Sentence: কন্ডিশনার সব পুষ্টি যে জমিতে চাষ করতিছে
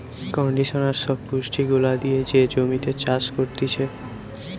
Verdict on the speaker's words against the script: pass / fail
fail